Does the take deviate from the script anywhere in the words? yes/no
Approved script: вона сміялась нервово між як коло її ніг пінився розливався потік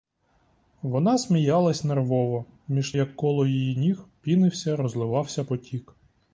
no